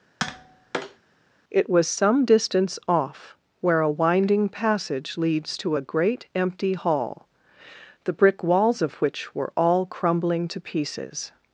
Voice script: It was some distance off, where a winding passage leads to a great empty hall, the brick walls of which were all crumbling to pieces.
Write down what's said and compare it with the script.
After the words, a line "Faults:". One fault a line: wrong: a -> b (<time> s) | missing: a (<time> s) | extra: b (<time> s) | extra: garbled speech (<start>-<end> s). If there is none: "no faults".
It was some distance off, where a winding passage leads to a great empty hall, the brick walls of which were all crumbling to pieces.
Faults:
no faults